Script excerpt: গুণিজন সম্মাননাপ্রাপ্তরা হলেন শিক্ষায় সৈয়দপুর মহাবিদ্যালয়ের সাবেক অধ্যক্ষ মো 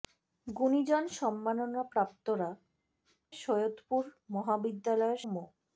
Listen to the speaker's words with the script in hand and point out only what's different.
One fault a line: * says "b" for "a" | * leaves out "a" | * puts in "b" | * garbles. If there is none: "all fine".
* leaves out "হলেন শিক্ষায়"
* leaves out "সাবেক অধ্যক্ষ"